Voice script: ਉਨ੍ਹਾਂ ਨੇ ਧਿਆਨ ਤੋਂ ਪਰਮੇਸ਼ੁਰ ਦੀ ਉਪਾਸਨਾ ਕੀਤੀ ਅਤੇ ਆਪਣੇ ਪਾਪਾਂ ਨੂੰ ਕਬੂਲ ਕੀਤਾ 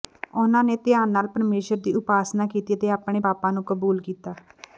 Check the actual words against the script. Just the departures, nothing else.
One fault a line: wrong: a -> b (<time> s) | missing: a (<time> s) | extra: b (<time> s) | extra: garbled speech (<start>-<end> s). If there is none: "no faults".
wrong: ਤੋਂ -> ਨਾਲ (1.1 s)